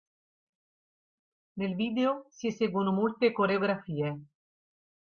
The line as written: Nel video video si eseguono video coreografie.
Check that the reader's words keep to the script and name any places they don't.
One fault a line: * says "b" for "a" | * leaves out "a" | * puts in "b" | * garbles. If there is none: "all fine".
* leaves out "video"
* says "molte" for "video"